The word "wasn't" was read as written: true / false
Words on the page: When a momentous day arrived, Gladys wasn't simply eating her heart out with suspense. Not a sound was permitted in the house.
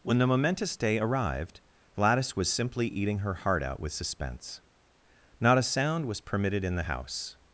false